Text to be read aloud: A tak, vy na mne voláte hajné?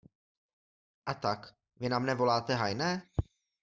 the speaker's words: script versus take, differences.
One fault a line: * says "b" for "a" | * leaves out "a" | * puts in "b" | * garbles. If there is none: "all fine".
all fine